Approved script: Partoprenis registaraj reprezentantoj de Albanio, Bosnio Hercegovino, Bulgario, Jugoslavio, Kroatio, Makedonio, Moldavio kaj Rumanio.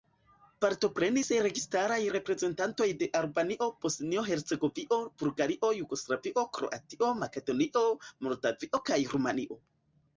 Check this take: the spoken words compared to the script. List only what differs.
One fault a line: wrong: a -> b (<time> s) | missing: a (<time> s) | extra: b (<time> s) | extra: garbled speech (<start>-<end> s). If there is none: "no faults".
no faults